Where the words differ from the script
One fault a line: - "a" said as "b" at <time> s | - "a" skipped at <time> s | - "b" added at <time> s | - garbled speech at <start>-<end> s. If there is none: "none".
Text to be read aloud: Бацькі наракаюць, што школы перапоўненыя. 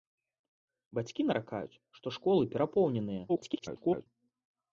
- garbled speech at 3.3-4.1 s